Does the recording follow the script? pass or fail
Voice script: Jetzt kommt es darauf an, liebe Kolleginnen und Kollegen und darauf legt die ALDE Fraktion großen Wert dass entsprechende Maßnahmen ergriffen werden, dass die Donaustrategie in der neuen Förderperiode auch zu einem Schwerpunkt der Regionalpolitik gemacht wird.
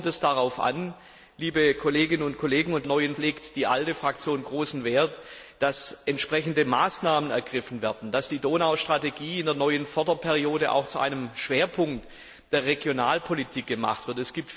fail